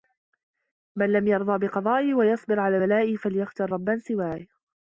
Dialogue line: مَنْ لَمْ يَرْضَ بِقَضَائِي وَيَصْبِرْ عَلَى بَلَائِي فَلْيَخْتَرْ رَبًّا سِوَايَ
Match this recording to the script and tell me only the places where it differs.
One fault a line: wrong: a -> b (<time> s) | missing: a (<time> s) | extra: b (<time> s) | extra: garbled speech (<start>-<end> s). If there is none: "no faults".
no faults